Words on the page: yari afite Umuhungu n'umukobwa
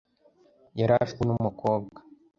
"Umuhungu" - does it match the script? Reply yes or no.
no